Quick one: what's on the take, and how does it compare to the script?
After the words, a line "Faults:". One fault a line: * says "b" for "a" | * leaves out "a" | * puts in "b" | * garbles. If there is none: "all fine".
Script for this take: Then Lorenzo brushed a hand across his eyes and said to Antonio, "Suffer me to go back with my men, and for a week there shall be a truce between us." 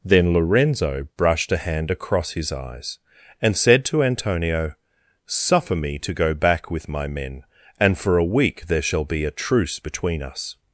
Then Lorenzo brushed a hand across his eyes and said to Antonio, "Suffer me to go back with my men, and for a week there shall be a truce between us."
Faults:
all fine